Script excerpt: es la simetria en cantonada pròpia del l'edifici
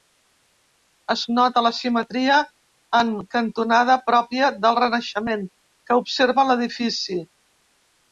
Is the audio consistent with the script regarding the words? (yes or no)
no